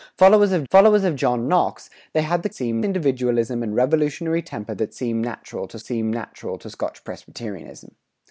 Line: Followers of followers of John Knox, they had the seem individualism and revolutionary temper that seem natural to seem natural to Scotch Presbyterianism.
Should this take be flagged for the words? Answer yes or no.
no